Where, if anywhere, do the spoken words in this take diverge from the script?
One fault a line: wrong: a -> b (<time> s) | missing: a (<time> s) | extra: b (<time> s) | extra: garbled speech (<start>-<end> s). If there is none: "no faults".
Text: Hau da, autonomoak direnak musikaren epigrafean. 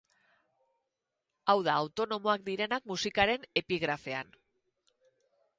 no faults